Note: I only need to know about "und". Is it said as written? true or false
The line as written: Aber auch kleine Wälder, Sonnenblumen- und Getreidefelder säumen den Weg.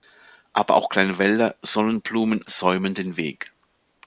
false